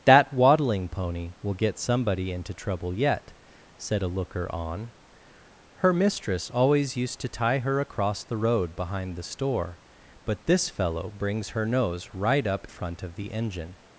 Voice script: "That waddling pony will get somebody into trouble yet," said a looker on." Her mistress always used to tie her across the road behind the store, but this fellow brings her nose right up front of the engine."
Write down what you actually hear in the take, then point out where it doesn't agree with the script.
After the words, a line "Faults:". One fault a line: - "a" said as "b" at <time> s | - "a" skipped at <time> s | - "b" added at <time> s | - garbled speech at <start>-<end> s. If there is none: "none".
"That waddling pony will get somebody into trouble yet," said a looker on." Her mistress always used to tie her across the road behind the store, but this fellow brings her nose right up front of the engine."
Faults:
none